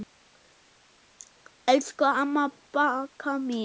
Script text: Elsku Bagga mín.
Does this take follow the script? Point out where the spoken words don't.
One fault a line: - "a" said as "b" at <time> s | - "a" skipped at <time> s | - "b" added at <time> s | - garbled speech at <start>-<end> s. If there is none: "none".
- "amma" added at 2.2 s